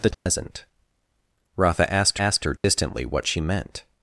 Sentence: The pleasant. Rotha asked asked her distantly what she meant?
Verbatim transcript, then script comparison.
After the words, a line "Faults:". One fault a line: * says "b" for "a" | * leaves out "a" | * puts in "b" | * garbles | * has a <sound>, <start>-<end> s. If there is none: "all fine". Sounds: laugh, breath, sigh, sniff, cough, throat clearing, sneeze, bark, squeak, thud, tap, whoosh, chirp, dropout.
The pleasant. Rotha asked asked her distantly what she meant?
Faults:
* has a dropout, 0.1-0.3 s
* has a dropout, 2.6-2.6 s